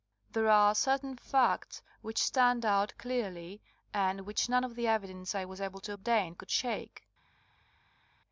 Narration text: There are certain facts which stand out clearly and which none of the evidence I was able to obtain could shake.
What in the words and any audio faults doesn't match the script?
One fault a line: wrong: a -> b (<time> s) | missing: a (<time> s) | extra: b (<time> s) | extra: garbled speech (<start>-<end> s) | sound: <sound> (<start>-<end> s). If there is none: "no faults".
no faults